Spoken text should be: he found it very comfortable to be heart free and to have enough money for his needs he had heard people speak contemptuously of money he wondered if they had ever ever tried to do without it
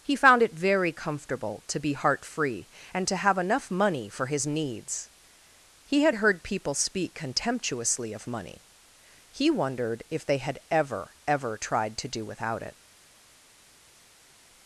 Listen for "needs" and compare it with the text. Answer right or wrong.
right